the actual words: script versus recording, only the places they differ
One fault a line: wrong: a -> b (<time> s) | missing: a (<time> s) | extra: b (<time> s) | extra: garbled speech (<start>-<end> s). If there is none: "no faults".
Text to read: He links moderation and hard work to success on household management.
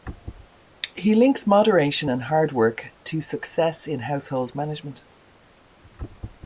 wrong: on -> in (3.9 s)